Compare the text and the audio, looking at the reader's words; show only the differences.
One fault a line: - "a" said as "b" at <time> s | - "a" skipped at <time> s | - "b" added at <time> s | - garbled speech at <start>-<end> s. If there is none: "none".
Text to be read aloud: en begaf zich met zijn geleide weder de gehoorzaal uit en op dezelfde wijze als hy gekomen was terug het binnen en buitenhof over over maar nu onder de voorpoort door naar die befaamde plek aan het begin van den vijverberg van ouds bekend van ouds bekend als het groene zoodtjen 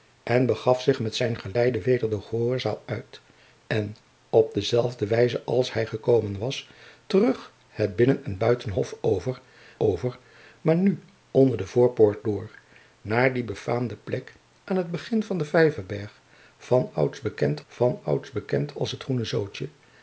none